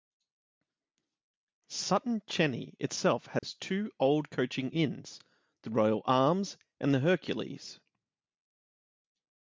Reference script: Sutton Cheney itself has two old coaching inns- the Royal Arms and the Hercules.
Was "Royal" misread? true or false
false